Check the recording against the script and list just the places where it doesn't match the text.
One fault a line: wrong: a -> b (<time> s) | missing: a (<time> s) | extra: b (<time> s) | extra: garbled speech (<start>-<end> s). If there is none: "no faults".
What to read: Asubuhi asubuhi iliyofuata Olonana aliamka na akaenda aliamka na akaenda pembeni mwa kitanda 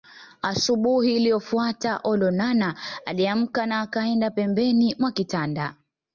missing: asubuhi (1.1 s)
missing: aliamka na akaenda (4.3 s)